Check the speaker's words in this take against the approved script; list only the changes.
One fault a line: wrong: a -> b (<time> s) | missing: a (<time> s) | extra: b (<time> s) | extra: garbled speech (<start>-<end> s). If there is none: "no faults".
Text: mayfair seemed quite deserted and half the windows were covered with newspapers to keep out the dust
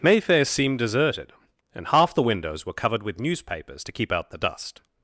missing: quite (0.8 s)